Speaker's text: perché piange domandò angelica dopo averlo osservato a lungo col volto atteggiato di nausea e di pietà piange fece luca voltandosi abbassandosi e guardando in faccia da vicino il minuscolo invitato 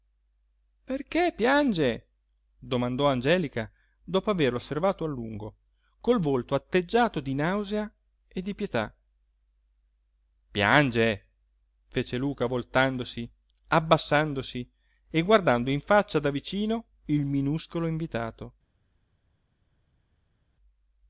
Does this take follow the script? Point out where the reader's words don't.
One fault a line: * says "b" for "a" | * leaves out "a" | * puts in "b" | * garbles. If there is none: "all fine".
all fine